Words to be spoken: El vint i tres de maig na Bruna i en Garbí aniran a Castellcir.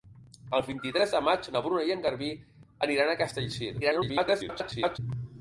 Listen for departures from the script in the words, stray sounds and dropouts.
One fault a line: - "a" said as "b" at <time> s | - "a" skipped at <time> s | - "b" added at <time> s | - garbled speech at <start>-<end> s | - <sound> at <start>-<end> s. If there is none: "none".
- garbled speech at 3.8-5.0 s